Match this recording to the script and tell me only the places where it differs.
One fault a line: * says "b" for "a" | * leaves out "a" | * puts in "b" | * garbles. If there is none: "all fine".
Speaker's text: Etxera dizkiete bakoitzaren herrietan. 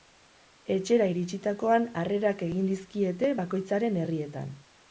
* puts in "iritsitakoan harrerak egin"